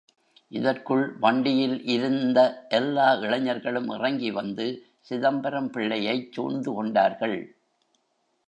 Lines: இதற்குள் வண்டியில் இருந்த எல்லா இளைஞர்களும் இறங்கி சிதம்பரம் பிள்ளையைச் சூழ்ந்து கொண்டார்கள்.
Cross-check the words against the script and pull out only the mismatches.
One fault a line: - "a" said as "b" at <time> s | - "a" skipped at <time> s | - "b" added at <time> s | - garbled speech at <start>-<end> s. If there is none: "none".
- "வந்து" added at 4.3 s